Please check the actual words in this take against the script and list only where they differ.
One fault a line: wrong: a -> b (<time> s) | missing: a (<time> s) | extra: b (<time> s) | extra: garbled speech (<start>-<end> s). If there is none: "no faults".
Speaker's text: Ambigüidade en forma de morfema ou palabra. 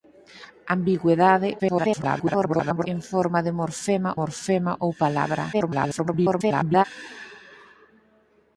extra: garbled speech (1.6-2.9 s)
extra: morfema (4.2 s)
extra: garbled speech (5.5-6.8 s)